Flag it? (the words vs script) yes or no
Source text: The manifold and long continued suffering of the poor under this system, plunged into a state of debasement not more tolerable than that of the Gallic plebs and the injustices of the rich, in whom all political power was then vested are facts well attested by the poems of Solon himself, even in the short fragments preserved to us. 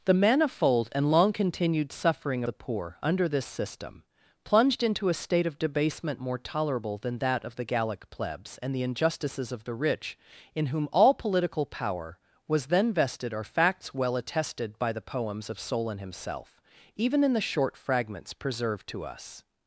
yes